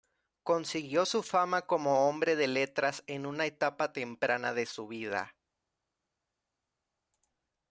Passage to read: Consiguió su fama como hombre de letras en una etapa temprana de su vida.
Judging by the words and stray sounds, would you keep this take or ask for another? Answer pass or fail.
pass